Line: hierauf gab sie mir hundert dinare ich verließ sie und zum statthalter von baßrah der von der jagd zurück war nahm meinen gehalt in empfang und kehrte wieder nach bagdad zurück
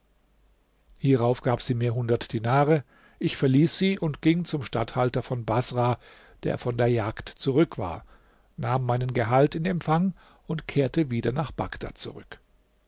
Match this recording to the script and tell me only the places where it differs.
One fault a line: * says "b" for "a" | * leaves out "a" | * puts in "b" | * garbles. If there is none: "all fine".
* puts in "ging"